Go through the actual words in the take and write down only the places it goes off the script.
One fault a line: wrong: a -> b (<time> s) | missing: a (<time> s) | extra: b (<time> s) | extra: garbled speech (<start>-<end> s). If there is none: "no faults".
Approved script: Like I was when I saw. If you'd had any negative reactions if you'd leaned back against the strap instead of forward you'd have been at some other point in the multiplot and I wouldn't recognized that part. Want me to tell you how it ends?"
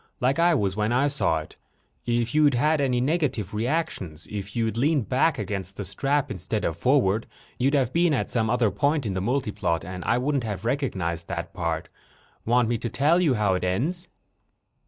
extra: it (1.4 s)
extra: have (10.4 s)